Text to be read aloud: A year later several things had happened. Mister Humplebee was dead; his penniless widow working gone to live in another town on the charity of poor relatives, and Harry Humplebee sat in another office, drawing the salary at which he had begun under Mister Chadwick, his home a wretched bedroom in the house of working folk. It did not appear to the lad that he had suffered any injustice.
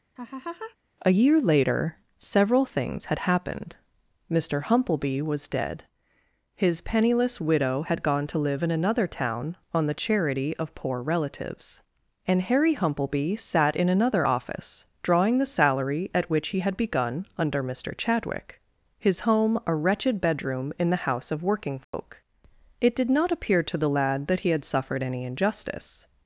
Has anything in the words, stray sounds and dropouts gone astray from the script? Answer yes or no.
yes